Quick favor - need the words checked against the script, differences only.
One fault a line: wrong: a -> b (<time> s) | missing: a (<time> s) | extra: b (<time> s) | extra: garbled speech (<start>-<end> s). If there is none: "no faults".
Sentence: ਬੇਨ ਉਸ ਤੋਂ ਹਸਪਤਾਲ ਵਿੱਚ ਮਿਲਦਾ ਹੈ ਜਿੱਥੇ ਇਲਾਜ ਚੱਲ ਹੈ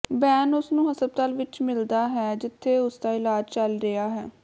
wrong: ਤੋਂ -> ਨੂੰ (0.7 s)
extra: ਉਸਦਾ (2.8 s)
extra: ਰਿਹਾ (3.8 s)